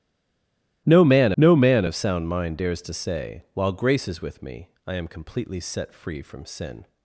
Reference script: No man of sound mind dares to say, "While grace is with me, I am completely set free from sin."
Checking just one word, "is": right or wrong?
right